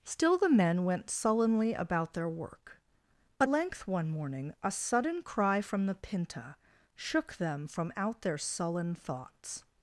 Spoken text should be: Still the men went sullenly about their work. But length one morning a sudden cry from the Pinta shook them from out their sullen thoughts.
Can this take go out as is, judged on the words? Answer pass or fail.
pass